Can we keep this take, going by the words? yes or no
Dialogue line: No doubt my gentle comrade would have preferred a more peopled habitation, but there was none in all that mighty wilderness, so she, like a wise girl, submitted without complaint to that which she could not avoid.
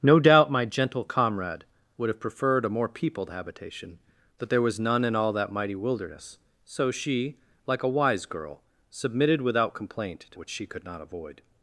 no